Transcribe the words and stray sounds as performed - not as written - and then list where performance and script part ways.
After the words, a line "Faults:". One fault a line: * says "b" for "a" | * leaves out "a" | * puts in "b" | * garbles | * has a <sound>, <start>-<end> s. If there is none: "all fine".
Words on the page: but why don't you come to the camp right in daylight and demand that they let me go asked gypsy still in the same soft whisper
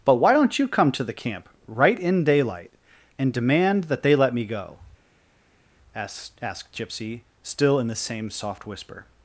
but why don't you come to the camp right in daylight and demand that they let me go asked asked gypsy still in the same soft whisper
Faults:
* puts in "asked"